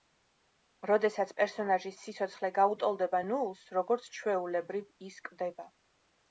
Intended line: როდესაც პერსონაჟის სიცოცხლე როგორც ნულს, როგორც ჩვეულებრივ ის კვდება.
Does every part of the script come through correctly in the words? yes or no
no